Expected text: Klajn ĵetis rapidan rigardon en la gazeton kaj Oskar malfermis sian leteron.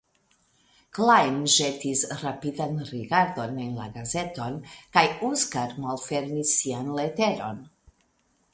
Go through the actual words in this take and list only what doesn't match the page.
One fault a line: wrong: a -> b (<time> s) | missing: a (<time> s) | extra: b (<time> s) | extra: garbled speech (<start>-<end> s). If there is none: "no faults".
no faults